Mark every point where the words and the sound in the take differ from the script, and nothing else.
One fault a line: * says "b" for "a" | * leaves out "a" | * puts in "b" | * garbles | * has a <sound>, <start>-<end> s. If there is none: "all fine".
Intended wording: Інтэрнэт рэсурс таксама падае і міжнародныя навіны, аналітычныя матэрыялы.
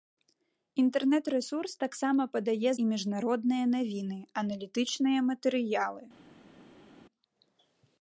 all fine